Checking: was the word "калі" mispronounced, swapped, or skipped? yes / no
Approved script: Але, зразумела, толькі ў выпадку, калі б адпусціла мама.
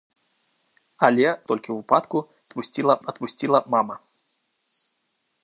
yes